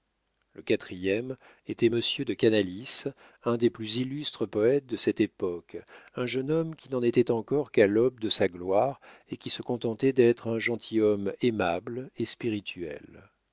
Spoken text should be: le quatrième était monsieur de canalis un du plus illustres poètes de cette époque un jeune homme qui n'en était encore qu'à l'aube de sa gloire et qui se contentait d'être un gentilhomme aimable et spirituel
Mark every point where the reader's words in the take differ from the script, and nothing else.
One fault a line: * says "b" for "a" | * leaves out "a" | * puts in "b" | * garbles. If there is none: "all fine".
* says "des" for "du"